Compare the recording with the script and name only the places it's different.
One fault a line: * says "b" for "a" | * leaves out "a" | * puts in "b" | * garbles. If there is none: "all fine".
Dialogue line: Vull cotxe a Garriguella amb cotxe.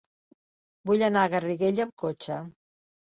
* says "anar" for "cotxe"